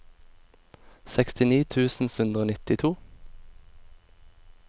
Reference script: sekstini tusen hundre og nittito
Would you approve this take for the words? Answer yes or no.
yes